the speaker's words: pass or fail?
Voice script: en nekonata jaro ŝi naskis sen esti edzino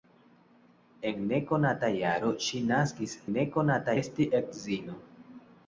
fail